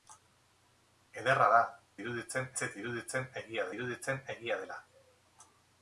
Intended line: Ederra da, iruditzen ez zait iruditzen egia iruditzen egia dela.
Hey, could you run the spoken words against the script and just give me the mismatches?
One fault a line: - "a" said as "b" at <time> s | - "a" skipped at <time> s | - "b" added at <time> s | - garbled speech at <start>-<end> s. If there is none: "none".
none